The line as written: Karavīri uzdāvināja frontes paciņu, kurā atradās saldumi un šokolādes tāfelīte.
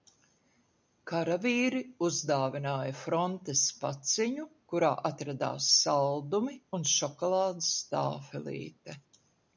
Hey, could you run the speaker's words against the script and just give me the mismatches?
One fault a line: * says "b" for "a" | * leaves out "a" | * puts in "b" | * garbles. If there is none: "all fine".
all fine